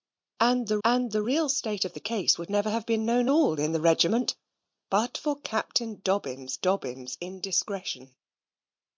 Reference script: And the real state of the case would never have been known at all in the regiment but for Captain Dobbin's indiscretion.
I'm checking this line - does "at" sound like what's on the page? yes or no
no